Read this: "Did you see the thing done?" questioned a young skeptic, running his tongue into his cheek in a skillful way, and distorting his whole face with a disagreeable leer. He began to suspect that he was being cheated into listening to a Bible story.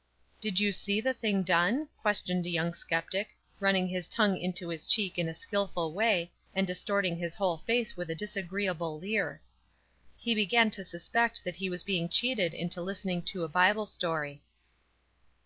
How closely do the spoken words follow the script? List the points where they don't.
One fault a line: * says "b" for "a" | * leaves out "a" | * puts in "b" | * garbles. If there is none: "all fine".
all fine